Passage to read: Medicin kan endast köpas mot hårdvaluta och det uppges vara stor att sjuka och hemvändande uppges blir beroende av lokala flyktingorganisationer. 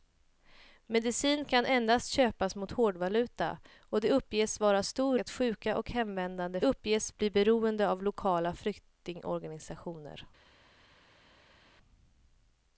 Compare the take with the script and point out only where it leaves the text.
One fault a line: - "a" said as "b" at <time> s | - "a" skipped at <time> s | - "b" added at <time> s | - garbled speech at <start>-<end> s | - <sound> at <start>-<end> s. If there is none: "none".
none